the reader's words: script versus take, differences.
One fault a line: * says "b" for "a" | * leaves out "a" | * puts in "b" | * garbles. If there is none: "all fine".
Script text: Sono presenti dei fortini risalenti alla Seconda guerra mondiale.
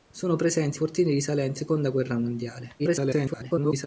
* leaves out "dei"
* leaves out "alla"
* garbles